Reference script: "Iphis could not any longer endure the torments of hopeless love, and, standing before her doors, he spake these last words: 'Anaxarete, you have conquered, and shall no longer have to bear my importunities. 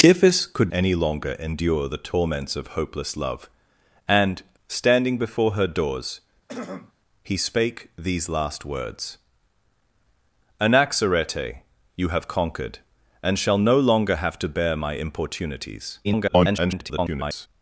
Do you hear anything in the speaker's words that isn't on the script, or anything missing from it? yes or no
yes